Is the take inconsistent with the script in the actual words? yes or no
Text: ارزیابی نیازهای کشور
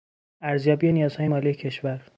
yes